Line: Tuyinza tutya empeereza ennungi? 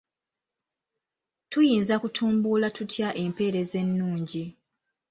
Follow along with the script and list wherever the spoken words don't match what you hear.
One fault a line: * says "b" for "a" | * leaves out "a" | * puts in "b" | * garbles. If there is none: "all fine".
* puts in "kutumbula"